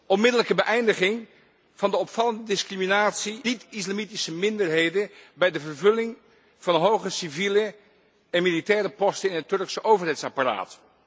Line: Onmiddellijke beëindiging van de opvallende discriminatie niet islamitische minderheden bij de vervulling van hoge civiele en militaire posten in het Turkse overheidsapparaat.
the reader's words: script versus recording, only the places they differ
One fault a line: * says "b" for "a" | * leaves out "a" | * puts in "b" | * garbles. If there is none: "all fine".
all fine